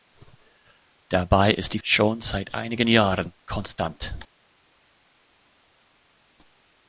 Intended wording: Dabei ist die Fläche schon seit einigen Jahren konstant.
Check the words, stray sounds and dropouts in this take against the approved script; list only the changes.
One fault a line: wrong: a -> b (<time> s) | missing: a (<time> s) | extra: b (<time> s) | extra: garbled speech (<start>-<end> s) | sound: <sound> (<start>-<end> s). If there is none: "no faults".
missing: Fläche (1.8 s)